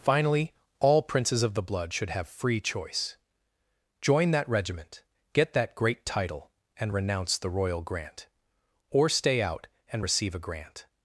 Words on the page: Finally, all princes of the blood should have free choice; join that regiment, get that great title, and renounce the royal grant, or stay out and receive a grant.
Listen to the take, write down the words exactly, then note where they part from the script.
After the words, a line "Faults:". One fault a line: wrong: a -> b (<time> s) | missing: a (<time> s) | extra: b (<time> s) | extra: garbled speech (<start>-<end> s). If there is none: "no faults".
Finally, all princes of the blood should have free choice; join that regiment, get that great title, and renounce the royal grant, or stay out and receive a grant.
Faults:
no faults